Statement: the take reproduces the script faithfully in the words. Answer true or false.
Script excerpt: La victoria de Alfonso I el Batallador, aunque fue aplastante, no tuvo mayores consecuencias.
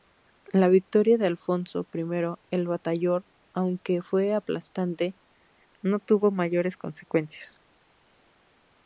true